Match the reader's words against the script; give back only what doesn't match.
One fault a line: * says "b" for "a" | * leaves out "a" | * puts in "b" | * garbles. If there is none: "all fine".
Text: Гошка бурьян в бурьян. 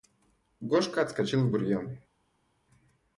* says "отскочил" for "бурьян"